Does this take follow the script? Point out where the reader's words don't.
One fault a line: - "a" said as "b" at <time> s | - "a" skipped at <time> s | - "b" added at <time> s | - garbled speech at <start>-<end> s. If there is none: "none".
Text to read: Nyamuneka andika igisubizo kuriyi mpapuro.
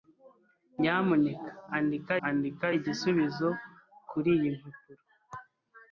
- "andika" added at 2.3 s